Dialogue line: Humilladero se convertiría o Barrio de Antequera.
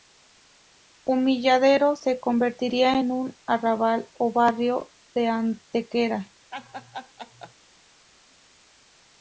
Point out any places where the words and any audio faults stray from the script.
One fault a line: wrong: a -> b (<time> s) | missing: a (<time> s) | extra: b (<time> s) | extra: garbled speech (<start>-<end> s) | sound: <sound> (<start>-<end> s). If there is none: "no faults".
extra: en un Arrabal (3.0 s)
sound: laugh (6.5-7.5 s)